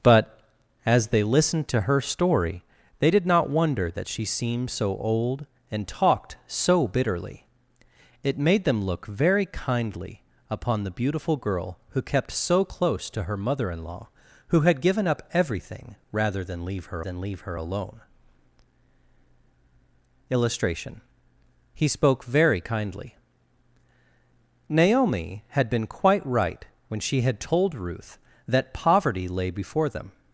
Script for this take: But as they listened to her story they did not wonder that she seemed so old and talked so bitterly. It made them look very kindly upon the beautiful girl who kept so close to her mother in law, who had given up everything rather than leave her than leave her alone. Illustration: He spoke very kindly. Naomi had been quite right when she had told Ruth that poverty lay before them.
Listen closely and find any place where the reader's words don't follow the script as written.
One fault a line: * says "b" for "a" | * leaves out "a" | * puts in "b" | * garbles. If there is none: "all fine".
all fine